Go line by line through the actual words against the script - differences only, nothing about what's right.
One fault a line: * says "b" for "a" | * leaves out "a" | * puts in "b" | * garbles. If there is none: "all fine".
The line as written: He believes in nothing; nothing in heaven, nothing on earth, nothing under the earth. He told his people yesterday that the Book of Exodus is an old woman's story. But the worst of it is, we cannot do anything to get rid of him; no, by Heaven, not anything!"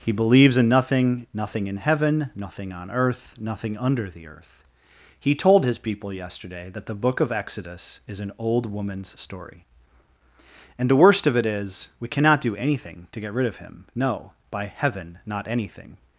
* says "And" for "But"